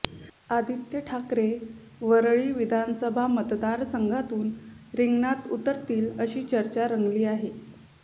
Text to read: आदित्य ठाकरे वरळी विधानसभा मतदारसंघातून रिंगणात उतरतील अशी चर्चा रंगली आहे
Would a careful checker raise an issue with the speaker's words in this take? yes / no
no